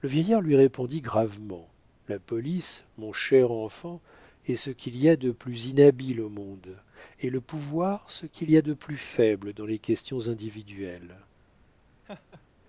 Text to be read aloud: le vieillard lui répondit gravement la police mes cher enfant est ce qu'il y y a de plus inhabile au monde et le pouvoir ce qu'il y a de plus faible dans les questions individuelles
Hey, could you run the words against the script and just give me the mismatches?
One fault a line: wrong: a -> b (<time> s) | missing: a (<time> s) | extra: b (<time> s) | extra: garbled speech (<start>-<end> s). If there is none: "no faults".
wrong: mes -> mon (3.0 s)
missing: y (5.1 s)